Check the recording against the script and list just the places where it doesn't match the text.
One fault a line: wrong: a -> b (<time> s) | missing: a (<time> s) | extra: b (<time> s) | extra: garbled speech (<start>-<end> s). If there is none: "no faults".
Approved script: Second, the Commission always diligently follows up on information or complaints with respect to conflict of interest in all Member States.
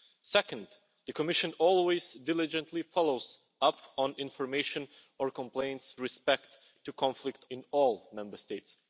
missing: with (6.0 s)
missing: of interest (7.4 s)